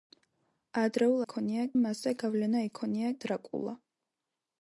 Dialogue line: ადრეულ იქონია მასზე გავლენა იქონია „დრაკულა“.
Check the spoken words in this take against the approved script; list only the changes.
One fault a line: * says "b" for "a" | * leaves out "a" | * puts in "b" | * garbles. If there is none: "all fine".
all fine